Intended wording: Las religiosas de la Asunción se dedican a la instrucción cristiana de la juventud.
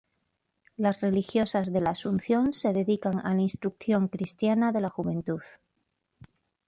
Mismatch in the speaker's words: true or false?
false